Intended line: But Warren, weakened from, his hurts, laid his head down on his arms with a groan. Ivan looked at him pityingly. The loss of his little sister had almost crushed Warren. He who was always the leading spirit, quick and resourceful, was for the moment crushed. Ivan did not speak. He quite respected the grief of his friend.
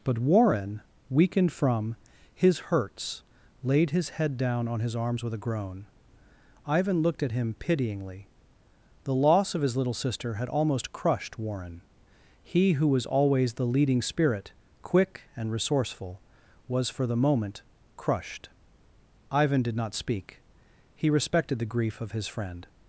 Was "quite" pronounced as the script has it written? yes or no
no